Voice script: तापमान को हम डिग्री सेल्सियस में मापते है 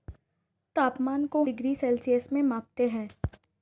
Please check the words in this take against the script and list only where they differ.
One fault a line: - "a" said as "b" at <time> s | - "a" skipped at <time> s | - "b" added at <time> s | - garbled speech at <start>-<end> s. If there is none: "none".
- "हम" skipped at 1.4 s